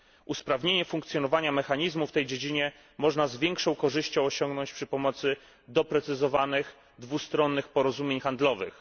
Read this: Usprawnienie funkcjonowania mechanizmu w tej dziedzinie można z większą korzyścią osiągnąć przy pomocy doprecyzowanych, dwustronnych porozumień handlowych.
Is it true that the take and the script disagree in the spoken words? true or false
false